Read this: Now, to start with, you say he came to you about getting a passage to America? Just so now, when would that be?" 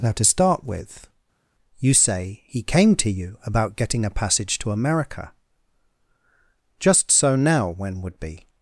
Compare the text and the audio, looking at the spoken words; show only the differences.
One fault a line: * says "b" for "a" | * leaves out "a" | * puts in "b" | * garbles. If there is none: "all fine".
* leaves out "that"